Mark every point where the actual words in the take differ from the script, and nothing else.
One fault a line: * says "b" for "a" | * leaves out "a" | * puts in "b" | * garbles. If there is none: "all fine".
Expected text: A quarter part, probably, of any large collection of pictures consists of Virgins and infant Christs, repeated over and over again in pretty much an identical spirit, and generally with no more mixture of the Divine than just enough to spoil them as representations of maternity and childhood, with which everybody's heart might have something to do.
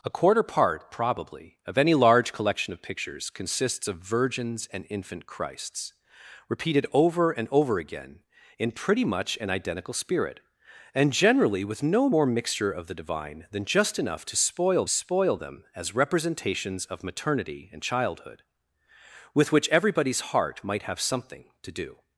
* puts in "spoil"